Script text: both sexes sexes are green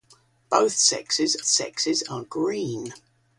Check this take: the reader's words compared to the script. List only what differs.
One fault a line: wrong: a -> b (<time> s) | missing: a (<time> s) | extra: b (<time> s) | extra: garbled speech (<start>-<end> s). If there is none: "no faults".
no faults